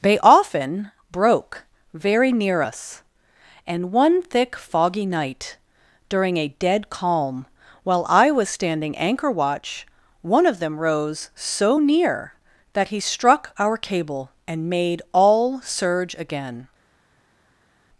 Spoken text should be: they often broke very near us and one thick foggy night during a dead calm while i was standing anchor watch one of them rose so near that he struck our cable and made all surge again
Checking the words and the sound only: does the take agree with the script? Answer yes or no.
yes